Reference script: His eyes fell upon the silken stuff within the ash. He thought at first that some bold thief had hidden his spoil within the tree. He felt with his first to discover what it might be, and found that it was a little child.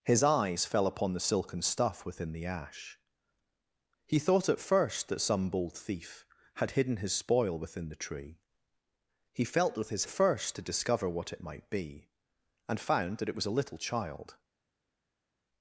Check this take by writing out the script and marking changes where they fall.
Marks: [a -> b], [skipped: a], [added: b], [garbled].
His eyes fell upon the silken stuff within the ash. He thought at first that some bold thief had hidden his spoil within the tree. He felt with his first to discover what it might be, and found that it was a little child.